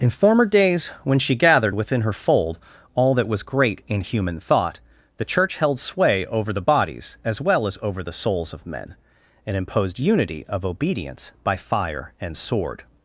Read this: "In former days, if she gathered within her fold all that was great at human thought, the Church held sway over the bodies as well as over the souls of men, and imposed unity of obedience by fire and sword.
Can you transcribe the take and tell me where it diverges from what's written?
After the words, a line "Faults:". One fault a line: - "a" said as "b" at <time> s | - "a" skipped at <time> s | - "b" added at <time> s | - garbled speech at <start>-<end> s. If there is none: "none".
"In former days, when she gathered within her fold all that was great in human thought, the Church held sway over the bodies as well as over the souls of men, and imposed unity of obedience by fire and sword.
Faults:
- "if" said as "when" at 1.0 s
- "at" said as "in" at 3.9 s